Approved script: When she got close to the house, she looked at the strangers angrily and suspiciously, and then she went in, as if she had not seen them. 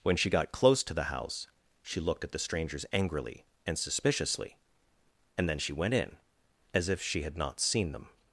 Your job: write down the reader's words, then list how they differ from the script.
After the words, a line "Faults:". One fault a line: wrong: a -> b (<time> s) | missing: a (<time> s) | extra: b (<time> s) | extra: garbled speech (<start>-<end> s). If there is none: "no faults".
When she got close to the house, she looked at the strangers angrily and suspiciously, and then she went in, as if she had not seen them.
Faults:
no faults